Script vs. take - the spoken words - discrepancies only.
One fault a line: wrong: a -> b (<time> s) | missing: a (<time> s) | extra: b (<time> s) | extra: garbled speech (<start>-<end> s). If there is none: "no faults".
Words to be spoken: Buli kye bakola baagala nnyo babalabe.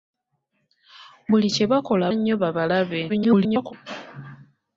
missing: baagala (2.0 s)
extra: garbled speech (3.1-3.7 s)